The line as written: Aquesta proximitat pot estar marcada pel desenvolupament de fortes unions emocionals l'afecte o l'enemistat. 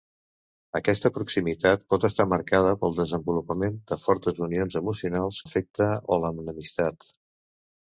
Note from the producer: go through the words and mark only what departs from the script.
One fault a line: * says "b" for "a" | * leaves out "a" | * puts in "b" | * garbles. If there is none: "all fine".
all fine